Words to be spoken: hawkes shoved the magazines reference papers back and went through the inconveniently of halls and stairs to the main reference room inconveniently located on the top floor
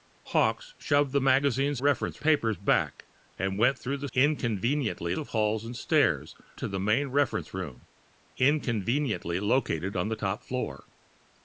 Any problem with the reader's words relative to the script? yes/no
no